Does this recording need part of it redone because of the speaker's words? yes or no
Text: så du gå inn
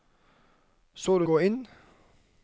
no